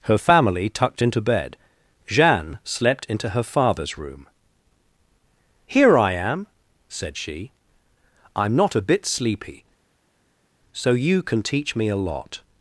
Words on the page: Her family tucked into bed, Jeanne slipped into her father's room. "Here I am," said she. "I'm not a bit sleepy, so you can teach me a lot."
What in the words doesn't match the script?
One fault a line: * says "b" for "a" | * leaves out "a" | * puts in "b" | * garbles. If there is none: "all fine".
* says "slept" for "slipped"